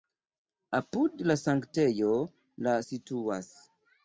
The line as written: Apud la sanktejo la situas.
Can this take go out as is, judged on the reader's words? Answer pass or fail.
pass